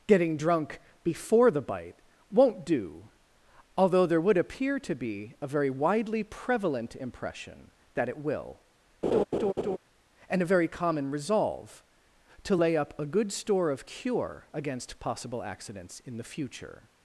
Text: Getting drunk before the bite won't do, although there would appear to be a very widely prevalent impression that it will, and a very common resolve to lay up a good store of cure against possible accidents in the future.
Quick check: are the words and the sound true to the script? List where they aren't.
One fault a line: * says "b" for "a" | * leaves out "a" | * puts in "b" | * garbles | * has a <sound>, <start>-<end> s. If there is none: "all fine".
* has a laugh, 9.0-9.8 s